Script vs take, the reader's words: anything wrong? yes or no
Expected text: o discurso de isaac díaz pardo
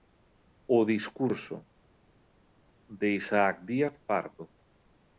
no